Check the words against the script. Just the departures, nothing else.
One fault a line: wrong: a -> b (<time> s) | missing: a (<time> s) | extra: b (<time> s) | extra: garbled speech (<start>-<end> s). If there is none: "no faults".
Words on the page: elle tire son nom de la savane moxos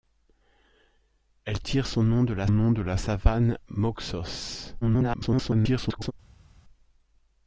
extra: nom de la (2.5 s)
extra: garbled speech (4.8-6.1 s)